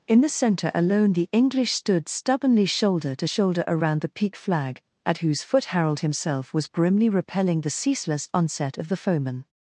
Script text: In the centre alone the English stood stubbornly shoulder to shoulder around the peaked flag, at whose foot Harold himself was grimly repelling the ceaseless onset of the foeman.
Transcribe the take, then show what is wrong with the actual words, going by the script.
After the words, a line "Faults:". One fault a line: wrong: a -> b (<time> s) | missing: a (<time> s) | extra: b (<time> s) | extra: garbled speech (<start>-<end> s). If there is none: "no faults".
In the centre alone the English stood stubbornly shoulder to shoulder around the peak flag, at whose foot Harold himself was grimly repelling the ceaseless onset of the foeman.
Faults:
wrong: peaked -> peak (4.1 s)